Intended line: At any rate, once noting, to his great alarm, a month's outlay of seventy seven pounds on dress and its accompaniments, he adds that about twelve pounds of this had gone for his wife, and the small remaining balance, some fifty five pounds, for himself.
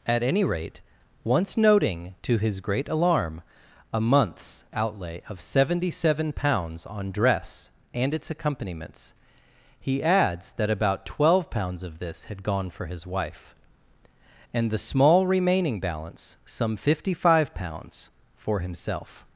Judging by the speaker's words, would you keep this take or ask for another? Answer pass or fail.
pass